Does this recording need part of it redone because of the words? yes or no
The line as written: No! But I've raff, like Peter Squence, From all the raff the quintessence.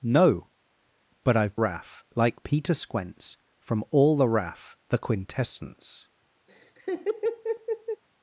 no